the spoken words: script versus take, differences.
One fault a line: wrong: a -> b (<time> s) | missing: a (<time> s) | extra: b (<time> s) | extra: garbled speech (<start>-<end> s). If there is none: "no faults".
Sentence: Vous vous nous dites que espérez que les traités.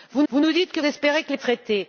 no faults